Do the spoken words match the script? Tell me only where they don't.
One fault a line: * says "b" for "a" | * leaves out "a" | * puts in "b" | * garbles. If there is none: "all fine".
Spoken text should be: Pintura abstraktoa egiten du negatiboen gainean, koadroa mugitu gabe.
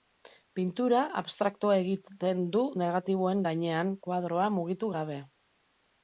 all fine